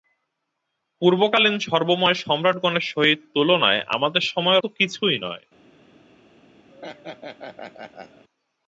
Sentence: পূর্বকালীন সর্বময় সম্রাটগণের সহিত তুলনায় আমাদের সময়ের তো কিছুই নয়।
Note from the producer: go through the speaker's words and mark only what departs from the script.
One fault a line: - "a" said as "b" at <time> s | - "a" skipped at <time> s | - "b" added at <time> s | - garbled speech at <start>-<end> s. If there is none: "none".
none